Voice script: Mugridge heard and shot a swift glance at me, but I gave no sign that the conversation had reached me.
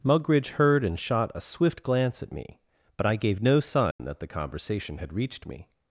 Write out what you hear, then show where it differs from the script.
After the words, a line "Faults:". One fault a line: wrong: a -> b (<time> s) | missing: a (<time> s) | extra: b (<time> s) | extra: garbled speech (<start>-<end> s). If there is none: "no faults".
Mugridge heard and shot a swift glance at me, but I gave no sign that the conversation had reached me.
Faults:
no faults